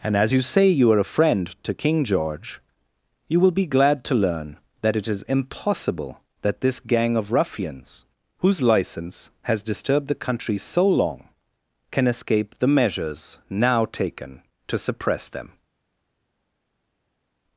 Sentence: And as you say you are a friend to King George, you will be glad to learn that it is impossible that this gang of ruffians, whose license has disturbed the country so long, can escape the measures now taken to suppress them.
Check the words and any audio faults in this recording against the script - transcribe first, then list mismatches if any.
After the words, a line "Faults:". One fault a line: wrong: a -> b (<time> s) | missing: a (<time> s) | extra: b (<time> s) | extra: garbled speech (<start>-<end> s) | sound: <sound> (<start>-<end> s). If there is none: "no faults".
And as you say you are a friend to King George, you will be glad to learn that it is impossible that this gang of ruffians, whose license has disturbed the country so long, can escape the measures now taken to suppress them.
Faults:
no faults